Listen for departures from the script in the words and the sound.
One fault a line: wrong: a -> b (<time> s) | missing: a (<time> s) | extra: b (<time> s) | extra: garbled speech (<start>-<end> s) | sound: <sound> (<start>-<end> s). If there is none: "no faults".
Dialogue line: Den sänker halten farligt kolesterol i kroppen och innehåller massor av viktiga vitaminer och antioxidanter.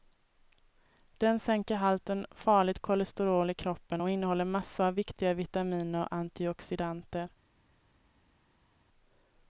no faults